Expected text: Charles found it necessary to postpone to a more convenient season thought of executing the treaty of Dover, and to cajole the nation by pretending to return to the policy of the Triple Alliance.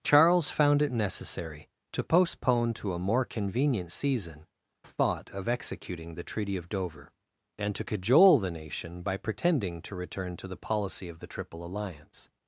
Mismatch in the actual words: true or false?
false